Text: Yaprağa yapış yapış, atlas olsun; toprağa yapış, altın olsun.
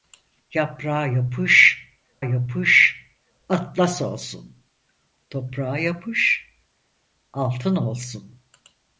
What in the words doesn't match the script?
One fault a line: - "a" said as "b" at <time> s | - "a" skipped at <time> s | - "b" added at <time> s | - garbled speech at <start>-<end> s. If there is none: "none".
none